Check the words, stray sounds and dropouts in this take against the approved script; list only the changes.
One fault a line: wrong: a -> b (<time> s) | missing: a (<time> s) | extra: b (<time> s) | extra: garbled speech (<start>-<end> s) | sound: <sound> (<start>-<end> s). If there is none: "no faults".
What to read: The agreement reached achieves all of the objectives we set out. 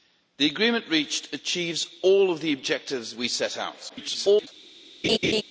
extra: garbled speech (3.9-4.5 s)
sound: laugh (5.0-5.4 s)